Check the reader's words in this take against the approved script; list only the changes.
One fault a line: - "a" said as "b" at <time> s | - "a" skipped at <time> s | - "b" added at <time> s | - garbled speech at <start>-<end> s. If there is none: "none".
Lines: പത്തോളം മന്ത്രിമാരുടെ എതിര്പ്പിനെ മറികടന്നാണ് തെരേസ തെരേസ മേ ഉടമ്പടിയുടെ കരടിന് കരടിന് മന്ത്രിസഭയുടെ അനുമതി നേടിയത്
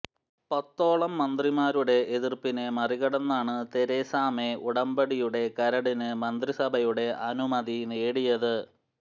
- "തെരേസ" skipped at 4.1 s
- "കരടിന്" skipped at 6.1 s